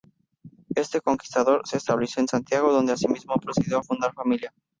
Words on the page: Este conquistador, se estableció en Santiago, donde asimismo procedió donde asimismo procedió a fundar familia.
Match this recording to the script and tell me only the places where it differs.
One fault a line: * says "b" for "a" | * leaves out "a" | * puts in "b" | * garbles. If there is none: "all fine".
* leaves out "donde asimismo procedió"